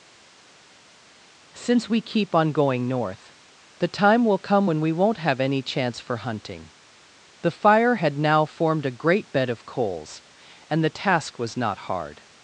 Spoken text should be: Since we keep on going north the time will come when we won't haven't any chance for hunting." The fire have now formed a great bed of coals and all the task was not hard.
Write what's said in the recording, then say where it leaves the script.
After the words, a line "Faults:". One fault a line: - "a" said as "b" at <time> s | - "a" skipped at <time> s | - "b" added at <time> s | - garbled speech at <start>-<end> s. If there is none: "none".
Since we keep on going north the time will come when we won't have any chance for hunting." The fire had now formed a great bed of coals and the task was not hard.
Faults:
- "haven't" said as "have" at 5.2 s
- "have" said as "had" at 7.9 s
- "all" skipped at 10.8 s